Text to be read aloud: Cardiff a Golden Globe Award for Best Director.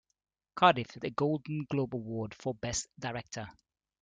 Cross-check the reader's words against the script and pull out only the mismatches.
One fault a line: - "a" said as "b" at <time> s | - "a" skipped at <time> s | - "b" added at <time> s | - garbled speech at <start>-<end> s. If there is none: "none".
none